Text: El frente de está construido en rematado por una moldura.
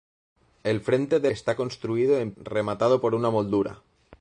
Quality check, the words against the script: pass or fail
pass